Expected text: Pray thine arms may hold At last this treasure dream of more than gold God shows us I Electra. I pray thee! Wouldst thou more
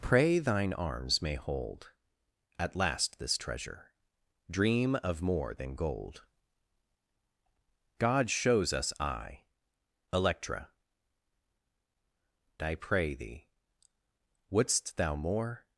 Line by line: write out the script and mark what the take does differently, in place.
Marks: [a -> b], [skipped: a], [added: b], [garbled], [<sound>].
Pray thine arms may hold At last this treasure dream of more than gold God shows us I Electra. I pray thee! Wouldst thou more